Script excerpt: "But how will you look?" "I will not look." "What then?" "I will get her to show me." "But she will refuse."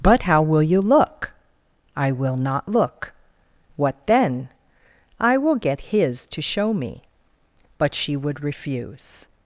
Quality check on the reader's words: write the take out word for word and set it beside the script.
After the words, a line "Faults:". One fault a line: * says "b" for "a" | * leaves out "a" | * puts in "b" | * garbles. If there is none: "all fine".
"But how will you look?" "I will not look." "What then?" "I will get his to show me." "But she would refuse."
Faults:
* says "his" for "her"
* says "would" for "will"